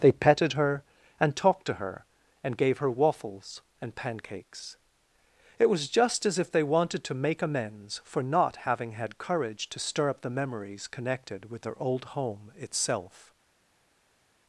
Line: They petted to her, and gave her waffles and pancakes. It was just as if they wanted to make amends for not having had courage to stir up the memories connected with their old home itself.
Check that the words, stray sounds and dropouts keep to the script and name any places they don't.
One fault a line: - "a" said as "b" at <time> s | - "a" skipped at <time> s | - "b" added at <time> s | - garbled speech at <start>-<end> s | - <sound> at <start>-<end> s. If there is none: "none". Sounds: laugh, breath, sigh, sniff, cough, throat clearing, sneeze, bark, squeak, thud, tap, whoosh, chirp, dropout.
- "her and talked" added at 0.5 s